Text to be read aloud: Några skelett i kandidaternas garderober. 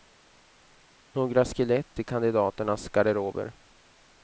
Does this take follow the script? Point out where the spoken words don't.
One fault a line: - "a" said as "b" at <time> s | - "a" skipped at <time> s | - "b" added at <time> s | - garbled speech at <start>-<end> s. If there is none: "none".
none